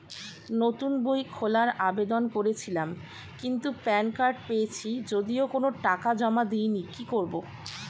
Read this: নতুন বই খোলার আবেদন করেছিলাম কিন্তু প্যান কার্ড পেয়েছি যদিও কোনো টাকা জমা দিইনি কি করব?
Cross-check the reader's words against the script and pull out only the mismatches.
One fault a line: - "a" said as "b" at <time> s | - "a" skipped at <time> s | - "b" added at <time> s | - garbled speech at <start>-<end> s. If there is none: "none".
none